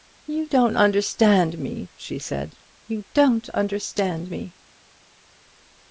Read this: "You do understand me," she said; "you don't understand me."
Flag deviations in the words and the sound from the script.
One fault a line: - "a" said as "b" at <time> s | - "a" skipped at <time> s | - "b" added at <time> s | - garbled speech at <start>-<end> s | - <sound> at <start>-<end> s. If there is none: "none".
- "do" said as "don't" at 0.5 s